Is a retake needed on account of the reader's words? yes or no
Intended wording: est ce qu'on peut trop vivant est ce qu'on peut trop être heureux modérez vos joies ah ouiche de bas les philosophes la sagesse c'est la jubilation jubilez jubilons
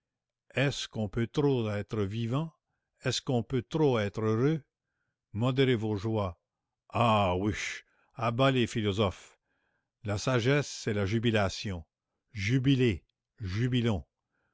yes